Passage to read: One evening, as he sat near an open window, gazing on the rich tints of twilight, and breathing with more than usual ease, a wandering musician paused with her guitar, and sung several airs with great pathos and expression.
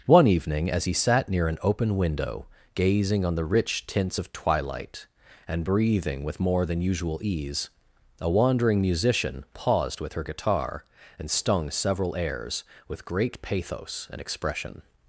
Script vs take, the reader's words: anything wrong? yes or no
yes